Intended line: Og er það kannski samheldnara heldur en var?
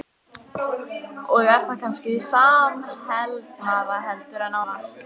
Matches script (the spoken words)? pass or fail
pass